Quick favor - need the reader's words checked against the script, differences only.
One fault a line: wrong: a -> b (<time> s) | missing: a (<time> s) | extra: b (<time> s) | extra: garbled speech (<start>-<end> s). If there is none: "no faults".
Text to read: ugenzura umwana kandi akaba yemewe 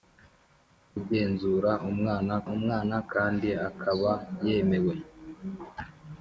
extra: umwana (2.5 s)